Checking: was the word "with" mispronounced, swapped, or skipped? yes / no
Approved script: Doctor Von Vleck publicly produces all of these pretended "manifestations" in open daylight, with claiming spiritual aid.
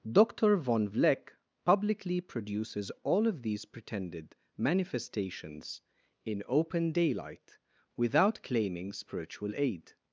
yes